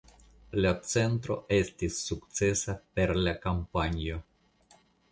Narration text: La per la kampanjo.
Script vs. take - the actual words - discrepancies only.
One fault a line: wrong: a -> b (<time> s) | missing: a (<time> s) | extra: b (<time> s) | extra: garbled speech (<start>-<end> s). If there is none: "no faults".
extra: centro estis sukcesa (0.9 s)